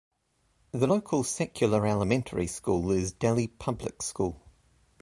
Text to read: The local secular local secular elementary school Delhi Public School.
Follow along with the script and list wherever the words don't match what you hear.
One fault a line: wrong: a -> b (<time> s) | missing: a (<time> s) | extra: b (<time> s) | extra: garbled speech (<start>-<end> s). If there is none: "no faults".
missing: local secular (1.9 s)
extra: is (2.9 s)